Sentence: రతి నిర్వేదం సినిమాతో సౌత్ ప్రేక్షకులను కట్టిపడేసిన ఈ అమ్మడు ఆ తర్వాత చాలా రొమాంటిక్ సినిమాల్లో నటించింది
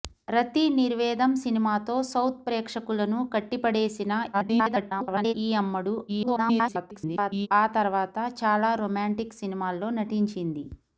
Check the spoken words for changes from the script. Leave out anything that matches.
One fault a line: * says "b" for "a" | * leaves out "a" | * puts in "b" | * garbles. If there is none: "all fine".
* garbles
* garbles